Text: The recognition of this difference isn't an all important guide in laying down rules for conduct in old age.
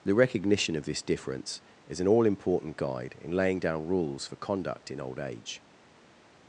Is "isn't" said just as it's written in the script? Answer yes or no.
no